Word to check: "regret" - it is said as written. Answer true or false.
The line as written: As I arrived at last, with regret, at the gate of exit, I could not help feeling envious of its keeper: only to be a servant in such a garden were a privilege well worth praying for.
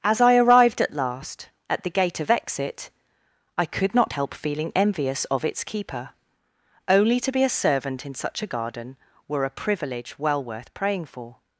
false